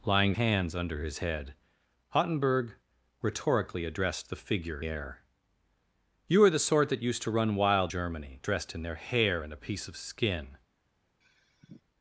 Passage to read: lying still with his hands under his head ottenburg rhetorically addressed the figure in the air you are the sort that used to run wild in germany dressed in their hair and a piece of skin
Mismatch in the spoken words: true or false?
true